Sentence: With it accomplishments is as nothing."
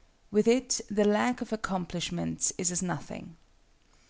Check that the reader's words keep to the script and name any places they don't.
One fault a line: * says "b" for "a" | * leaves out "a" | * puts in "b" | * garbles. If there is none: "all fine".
* puts in "the lack of"